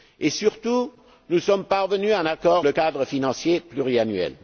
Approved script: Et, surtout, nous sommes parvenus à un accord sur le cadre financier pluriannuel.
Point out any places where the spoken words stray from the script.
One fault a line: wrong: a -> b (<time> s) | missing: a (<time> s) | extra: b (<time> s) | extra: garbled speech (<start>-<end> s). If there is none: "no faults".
missing: sur (2.6 s)